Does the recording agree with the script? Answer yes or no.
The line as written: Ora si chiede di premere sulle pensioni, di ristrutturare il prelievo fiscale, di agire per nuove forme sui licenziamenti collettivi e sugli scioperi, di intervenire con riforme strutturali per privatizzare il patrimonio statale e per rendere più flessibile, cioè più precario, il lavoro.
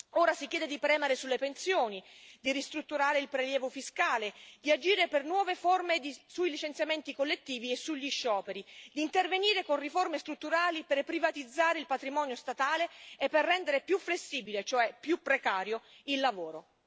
yes